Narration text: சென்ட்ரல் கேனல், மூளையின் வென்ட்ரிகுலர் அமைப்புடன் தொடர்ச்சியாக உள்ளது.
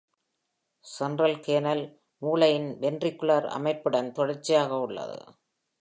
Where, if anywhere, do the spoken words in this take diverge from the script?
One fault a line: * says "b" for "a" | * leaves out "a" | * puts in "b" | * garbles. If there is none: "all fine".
all fine